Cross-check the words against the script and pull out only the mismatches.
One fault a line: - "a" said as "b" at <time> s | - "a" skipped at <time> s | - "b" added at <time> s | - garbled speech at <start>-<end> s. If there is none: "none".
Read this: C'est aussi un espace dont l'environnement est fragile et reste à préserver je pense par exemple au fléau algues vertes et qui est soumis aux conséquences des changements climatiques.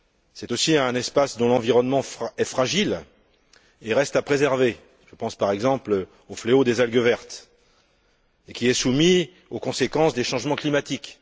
- "des" added at 6.6 s